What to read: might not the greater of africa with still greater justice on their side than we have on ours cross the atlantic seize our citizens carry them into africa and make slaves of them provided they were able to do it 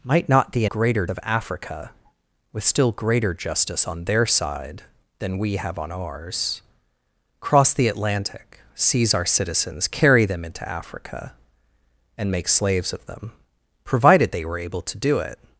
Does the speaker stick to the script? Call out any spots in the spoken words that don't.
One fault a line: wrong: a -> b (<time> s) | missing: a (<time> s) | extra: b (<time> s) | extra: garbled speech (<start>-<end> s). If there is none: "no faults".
no faults